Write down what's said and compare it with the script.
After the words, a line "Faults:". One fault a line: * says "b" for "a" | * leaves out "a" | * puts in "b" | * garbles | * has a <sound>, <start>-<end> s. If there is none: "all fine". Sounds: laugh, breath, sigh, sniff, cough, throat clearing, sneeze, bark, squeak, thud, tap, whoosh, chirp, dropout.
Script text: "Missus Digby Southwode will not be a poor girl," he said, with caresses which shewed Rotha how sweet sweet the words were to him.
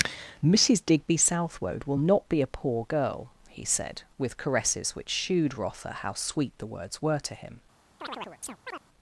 "Missus Digby Southwode will not be a poor girl," he said, with caresses which shewed Rotha how sweet the words were to him.
Faults:
* leaves out "sweet"
* has a chirp, 8.0-8.8 s